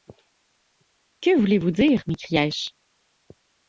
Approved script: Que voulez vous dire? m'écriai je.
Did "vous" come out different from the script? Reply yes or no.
no